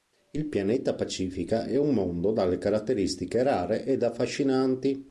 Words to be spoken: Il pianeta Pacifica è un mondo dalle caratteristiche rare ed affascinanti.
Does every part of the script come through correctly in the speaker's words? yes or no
yes